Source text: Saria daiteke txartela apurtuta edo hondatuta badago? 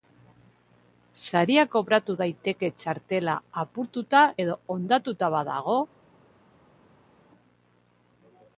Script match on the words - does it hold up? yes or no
no